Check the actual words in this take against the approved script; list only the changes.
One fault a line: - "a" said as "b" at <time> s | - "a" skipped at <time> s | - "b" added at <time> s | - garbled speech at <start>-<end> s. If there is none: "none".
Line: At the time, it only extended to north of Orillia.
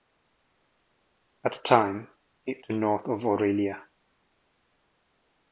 - "only extended" skipped at 2.6 s